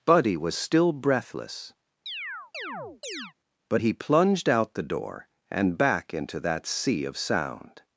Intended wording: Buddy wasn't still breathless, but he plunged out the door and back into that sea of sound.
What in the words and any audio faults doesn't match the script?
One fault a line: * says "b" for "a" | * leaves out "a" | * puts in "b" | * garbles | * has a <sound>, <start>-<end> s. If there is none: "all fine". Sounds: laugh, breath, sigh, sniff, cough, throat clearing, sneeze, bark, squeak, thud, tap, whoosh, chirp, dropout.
* says "was" for "wasn't"
* has a chirp, 2.1-3.3 s